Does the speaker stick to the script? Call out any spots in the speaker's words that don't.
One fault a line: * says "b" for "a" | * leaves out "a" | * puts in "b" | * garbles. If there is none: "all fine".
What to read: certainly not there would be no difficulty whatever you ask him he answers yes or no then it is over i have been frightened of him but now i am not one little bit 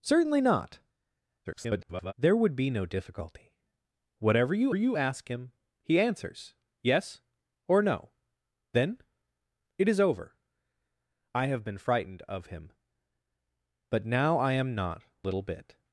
* garbles
* puts in "you"
* leaves out "one"